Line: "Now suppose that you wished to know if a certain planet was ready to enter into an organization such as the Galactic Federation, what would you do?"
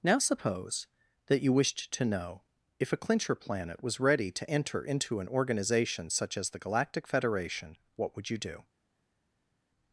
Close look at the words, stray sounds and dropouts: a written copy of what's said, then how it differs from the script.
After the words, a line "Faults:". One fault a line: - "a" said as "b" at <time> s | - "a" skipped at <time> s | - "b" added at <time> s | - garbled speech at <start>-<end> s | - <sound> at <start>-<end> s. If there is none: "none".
"Now suppose that you wished to know if a clincher planet was ready to enter into an organization such as the Galactic Federation, what would you do?"
Faults:
- "certain" said as "clincher" at 3.0 s